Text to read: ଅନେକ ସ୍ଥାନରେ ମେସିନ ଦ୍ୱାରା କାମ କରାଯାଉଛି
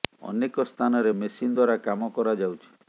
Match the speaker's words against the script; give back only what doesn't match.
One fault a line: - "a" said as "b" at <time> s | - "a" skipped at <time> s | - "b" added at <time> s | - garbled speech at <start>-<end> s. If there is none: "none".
none